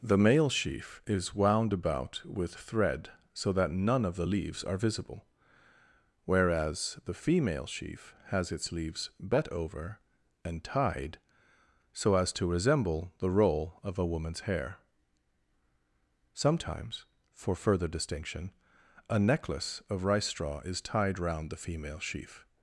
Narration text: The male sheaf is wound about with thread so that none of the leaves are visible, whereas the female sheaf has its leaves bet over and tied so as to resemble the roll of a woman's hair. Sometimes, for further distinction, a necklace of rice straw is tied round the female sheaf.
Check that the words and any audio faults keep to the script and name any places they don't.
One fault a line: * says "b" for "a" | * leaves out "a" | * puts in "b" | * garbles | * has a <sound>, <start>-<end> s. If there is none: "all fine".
all fine